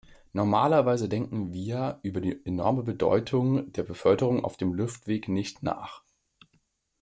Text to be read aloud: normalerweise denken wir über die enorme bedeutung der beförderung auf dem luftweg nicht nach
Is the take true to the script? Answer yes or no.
yes